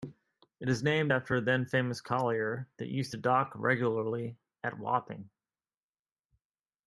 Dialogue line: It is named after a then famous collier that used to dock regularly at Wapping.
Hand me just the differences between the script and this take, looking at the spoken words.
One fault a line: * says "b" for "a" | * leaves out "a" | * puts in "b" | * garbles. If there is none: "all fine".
all fine